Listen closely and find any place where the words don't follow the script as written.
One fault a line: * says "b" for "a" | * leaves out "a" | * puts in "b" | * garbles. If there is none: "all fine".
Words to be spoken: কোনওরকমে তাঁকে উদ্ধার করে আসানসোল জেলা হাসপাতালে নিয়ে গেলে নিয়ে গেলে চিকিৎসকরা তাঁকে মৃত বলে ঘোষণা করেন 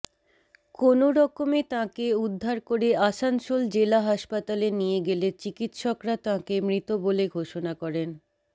* leaves out "নিয়ে গেলে"